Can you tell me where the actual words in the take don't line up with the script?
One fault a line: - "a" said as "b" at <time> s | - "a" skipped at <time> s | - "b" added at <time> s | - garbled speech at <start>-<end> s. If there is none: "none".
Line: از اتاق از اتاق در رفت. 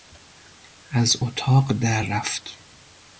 - "از اتاق" skipped at 1.7 s